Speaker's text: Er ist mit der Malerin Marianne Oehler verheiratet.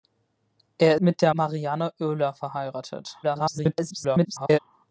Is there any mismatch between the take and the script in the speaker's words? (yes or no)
yes